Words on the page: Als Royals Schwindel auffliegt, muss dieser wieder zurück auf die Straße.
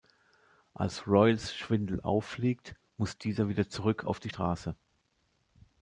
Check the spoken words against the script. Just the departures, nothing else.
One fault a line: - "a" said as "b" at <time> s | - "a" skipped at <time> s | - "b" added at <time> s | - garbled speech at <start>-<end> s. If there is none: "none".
none